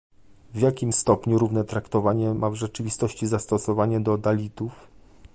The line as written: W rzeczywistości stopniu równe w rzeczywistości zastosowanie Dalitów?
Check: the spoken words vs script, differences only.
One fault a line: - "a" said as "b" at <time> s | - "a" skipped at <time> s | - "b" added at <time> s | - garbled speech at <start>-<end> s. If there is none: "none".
- "rzeczywistości" said as "jakim" at 0.6 s
- "traktowanie ma" added at 1.6 s
- "do" added at 4.0 s